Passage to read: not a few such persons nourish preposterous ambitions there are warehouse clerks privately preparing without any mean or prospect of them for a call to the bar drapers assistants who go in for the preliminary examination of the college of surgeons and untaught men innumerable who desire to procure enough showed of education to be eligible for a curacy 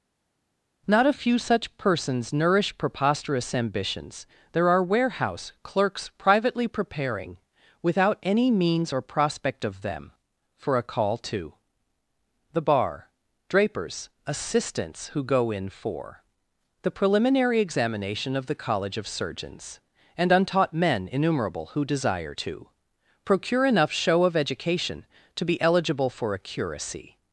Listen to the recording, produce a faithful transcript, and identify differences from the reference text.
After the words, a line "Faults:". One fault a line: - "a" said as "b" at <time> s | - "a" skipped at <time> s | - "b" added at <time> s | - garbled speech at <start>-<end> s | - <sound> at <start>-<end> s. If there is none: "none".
not a few such persons nourish preposterous ambitions there are warehouse clerks privately preparing without any means or prospect of them for a call to the bar drapers assistants who go in for the preliminary examination of the college of surgeons and untaught men innumerable who desire to procure enough show of education to be eligible for a curacy
Faults:
- "mean" said as "means" at 8.5 s
- "showed" said as "show" at 23.9 s